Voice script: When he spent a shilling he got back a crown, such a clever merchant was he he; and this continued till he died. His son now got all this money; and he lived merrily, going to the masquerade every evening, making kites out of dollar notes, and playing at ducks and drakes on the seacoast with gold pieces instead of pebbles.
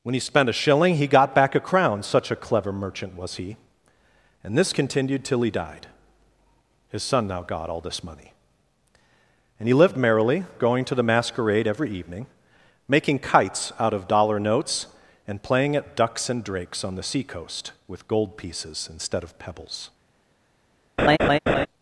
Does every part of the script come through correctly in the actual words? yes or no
no